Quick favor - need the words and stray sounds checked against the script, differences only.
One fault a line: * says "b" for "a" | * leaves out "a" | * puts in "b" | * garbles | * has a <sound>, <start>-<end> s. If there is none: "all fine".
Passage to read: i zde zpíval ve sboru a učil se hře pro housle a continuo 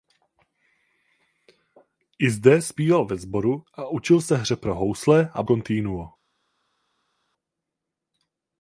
all fine